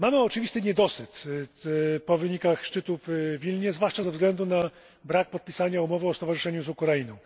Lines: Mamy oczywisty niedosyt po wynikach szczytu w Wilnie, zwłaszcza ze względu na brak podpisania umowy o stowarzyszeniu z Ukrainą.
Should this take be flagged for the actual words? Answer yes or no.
no